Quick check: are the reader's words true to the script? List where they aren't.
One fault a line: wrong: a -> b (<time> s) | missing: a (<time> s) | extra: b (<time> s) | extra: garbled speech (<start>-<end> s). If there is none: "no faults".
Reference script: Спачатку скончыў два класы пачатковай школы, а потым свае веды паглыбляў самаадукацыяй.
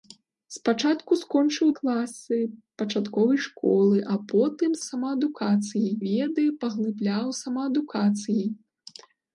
missing: два (1.7 s)
wrong: свае -> самаадукацыяй (4.9 s)